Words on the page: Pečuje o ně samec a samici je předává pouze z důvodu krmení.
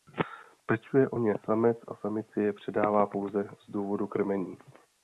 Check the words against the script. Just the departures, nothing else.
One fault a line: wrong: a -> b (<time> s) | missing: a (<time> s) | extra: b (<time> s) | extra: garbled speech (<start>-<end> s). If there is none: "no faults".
no faults